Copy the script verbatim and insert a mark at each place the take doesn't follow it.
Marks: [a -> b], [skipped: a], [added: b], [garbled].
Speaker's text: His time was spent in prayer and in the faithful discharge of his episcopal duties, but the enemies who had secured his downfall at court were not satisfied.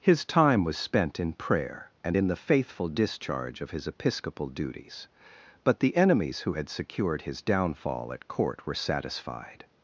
His time was spent in prayer and in the faithful discharge of his episcopal duties, but the enemies who had secured his downfall at court were [skipped: not] satisfied.